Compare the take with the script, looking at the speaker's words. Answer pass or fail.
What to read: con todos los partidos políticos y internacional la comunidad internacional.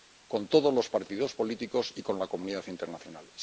fail